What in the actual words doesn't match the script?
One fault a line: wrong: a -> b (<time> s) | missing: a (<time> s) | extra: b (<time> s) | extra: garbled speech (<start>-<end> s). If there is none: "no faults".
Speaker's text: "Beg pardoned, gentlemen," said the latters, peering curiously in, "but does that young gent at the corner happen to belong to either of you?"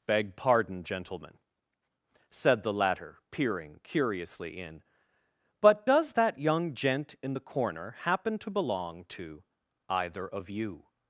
wrong: pardoned -> pardon (0.3 s)
wrong: latters -> latter (2.7 s)
wrong: at -> in (7.2 s)